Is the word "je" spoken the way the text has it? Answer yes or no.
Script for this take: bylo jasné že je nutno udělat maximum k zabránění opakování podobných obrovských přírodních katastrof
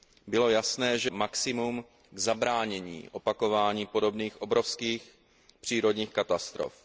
no